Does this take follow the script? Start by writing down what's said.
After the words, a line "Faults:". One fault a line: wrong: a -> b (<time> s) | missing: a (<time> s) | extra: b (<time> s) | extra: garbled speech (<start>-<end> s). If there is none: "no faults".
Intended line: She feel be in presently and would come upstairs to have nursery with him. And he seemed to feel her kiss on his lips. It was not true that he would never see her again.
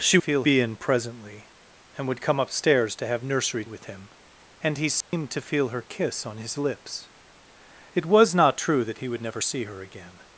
She feel be in presently and would come upstairs to have nursery with him. And he seemed to feel her kiss on his lips. It was not true that he would never see her again.
Faults:
no faults